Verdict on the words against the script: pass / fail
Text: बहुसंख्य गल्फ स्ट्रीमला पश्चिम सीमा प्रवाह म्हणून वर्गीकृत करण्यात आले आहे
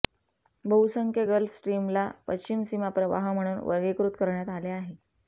pass